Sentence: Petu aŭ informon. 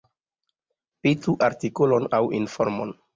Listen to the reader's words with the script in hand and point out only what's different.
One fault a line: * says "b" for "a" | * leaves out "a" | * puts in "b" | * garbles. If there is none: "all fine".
* puts in "artikolon"